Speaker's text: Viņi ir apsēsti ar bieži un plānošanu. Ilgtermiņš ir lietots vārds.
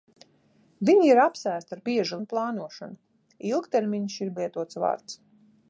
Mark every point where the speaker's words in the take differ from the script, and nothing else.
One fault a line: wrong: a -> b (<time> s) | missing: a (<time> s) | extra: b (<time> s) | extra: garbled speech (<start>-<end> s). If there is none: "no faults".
no faults